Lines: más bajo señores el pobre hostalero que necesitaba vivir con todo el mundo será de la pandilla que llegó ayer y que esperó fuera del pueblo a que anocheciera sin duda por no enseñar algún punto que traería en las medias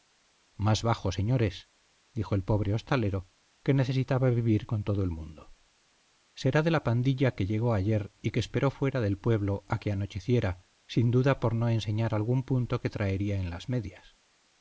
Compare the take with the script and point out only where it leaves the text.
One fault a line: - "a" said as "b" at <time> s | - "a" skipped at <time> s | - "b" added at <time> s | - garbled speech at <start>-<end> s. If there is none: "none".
- "dijo" added at 2.1 s